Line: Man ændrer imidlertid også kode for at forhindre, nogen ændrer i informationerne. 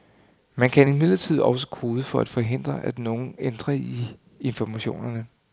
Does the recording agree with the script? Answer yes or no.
no